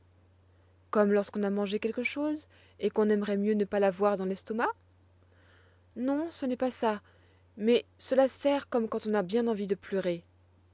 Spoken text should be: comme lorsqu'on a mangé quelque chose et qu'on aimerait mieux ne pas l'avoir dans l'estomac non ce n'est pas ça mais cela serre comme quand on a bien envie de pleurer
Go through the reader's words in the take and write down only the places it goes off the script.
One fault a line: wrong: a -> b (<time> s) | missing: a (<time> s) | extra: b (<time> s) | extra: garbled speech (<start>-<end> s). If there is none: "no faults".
no faults